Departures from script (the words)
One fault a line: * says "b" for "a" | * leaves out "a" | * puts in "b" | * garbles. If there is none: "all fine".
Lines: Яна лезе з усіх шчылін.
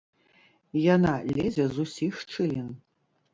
all fine